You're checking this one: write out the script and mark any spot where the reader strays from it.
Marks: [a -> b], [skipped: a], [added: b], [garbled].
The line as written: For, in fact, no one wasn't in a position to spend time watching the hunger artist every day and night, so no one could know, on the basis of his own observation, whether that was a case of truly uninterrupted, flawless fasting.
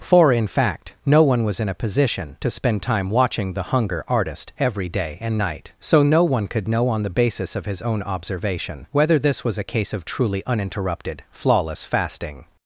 For, in fact, no one [wasn't -> was] in a position to spend time watching the hunger artist every day and night, so no one could know, on the basis of his own observation, whether [that -> this] was a case of truly uninterrupted, flawless fasting.